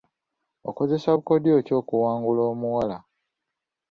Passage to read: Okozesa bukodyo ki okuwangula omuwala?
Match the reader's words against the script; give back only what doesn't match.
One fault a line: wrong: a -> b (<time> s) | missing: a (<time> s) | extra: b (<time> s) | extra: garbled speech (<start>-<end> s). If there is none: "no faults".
no faults